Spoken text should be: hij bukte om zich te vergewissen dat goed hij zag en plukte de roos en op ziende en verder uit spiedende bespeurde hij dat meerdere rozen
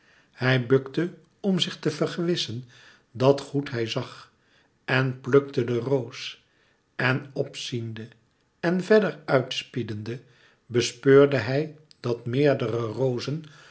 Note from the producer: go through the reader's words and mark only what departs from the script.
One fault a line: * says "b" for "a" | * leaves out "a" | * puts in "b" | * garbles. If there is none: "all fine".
all fine